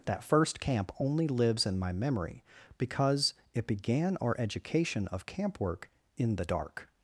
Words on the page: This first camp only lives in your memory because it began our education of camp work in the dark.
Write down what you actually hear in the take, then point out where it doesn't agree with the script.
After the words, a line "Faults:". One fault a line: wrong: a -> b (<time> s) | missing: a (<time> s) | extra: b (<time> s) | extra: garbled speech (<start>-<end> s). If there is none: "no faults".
That first camp only lives in my memory because it began our education of camp work in the dark.
Faults:
wrong: This -> That (0.1 s)
wrong: your -> my (1.8 s)